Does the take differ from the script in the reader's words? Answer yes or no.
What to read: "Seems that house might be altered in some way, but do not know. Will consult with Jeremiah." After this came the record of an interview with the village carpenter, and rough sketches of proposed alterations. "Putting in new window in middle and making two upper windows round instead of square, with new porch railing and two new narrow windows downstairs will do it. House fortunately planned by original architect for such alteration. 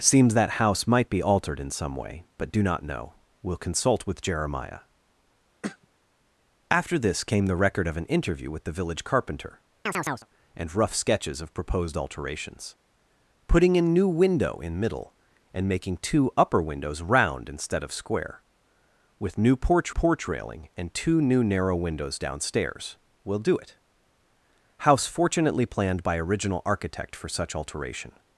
yes